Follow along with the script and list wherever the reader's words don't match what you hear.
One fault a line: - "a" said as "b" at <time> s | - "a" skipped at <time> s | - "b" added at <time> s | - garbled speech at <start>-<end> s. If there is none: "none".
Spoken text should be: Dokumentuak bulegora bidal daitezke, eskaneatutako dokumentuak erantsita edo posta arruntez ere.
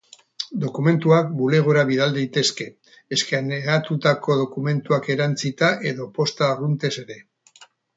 none